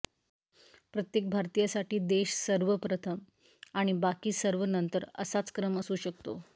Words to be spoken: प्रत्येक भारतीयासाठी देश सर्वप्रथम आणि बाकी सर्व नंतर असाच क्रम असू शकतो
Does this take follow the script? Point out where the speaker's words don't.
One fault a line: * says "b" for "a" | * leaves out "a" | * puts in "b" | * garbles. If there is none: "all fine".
all fine